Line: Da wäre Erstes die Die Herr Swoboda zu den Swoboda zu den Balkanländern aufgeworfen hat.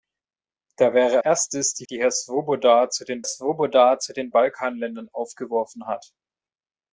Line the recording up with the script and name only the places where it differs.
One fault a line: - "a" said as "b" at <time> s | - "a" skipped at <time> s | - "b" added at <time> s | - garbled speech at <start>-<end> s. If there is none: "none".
none